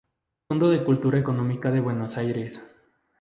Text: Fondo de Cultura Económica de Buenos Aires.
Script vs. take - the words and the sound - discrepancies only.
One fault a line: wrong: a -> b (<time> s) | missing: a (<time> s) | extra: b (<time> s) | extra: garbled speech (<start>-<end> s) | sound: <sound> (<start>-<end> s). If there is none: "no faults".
no faults